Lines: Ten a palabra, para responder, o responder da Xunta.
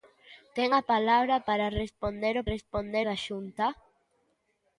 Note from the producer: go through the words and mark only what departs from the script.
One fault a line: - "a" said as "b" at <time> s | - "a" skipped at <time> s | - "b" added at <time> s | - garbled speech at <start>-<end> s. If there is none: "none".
none